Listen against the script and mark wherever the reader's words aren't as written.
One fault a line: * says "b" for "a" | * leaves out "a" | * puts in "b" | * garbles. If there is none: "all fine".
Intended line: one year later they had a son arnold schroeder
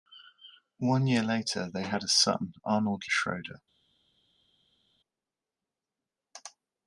all fine